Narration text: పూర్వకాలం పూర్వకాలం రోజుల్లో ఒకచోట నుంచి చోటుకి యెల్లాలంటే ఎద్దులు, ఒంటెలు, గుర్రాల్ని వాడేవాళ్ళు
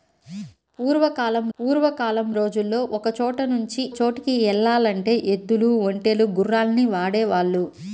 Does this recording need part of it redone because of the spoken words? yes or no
no